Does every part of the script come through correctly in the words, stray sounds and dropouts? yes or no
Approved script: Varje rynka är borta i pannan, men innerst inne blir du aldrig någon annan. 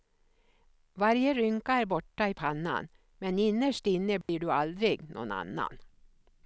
no